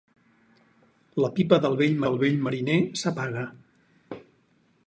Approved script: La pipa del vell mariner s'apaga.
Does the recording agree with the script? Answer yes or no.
no